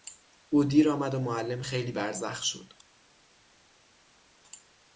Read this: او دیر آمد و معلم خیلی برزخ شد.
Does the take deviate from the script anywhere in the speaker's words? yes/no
no